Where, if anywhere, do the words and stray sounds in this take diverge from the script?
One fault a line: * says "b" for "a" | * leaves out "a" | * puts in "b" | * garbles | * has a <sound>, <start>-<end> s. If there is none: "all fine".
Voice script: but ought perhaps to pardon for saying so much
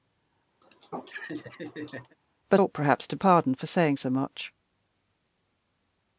* has a laugh, 0.6-2.2 s